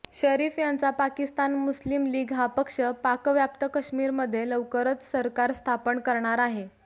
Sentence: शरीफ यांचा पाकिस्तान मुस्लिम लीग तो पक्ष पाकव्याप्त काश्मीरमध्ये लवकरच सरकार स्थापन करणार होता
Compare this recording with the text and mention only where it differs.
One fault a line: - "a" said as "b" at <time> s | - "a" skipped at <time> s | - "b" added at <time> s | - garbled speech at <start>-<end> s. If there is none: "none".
- "तो" said as "हा" at 2.3 s
- "होता" said as "आहे" at 6.4 s